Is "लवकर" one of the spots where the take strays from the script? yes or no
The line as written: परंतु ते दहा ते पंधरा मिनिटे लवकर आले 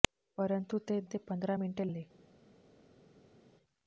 yes